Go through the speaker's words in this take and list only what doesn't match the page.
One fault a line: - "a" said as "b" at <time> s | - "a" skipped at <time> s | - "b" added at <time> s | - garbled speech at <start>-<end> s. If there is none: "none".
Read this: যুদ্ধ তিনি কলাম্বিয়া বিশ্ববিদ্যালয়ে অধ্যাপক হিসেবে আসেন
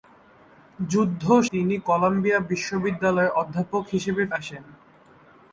none